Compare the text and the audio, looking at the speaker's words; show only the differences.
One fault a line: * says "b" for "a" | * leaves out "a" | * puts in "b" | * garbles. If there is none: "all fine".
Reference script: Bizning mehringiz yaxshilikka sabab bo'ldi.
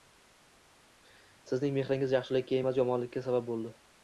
* says "Sizning" for "Bizning"
* puts in "emas yomonlikka"